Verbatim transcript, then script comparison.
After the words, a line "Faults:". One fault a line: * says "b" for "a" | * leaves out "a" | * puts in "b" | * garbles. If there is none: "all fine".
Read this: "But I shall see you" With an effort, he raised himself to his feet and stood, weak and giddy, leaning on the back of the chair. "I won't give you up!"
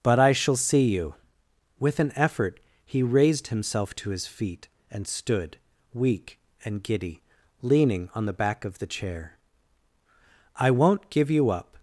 "But I shall see you" With an effort, he raised himself to his feet and stood, weak and giddy, leaning on the back of the chair. "I won't give you up!"
Faults:
all fine